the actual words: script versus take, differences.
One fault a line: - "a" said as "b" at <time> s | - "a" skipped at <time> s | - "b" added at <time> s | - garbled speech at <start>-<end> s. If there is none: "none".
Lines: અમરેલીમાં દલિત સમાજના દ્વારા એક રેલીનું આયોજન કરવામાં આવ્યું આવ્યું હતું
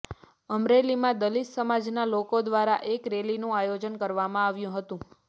- "લોકો" added at 2.1 s
- "આવ્યું" skipped at 4.8 s